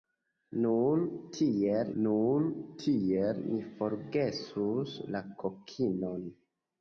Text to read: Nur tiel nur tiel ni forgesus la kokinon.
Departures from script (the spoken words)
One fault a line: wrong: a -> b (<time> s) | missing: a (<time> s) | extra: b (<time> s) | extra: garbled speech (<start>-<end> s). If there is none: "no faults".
no faults